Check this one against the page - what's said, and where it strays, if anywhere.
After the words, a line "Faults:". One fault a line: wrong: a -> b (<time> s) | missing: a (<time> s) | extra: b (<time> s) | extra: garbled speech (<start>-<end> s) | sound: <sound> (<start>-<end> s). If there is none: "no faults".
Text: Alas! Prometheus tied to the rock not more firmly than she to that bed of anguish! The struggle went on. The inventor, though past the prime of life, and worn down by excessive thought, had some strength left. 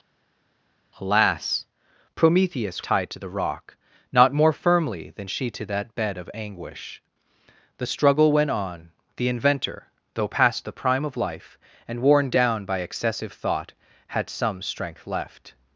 Alas! Prometheus tied to the rock not more firmly than she to that bed of anguish! The struggle went on. The inventor, though past the prime of life, and worn down by excessive thought, had some strength left.
Faults:
no faults